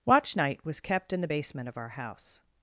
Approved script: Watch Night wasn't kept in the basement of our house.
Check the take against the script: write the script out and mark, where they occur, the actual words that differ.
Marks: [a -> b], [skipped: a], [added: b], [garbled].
Watch Night [wasn't -> was] kept in the basement of our house.